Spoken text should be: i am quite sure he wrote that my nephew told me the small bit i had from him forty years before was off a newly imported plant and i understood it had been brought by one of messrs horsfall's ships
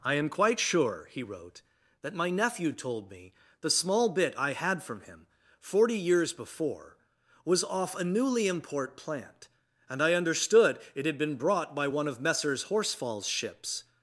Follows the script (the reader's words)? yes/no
no